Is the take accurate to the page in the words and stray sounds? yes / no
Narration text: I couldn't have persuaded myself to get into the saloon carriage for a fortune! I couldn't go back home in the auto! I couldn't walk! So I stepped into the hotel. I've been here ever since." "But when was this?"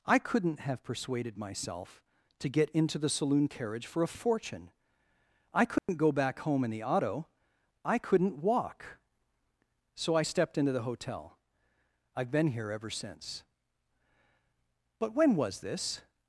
no